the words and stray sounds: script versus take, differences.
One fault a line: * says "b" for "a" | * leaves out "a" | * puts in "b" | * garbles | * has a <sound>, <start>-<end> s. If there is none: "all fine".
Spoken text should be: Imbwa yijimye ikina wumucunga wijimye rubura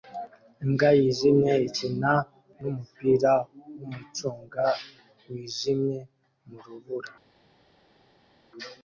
* puts in "numupira"
* puts in "mu"